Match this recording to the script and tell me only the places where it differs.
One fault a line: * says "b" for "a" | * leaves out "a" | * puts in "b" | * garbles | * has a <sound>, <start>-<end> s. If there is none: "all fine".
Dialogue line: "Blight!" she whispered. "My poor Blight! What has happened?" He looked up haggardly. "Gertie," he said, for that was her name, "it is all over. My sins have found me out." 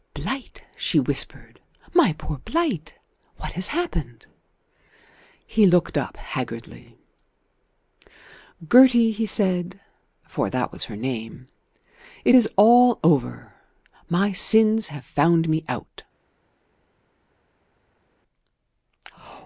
all fine